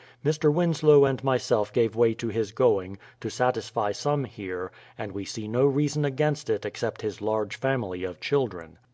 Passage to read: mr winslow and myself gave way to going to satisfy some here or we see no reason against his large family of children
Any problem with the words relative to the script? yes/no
yes